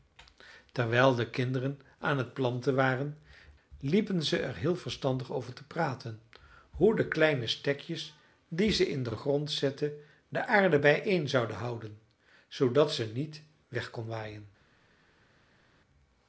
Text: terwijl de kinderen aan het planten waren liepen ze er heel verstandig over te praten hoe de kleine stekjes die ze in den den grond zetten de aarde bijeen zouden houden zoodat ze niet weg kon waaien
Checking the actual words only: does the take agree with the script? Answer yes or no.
yes